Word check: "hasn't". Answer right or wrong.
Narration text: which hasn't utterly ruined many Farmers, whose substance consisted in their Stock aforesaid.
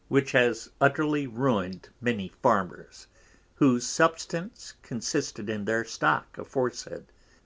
wrong